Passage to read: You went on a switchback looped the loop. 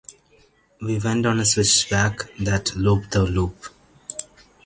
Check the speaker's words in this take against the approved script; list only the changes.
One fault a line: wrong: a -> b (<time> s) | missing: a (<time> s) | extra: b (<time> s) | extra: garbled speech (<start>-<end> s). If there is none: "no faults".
wrong: You -> We (0.8 s)
extra: that (2.4 s)